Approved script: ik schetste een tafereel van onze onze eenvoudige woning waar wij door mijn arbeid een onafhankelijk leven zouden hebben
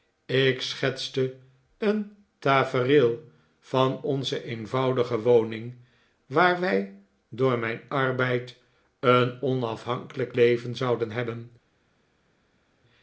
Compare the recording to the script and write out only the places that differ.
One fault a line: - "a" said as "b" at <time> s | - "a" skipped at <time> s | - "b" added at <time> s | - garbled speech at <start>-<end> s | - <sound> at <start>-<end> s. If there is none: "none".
- "onze" skipped at 4.4 s